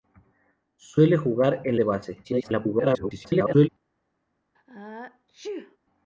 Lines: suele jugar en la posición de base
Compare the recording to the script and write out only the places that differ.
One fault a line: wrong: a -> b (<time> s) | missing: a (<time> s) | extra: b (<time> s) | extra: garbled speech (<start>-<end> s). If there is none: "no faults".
missing: la posición (1.8 s)
extra: garbled speech (2.2-3.7 s)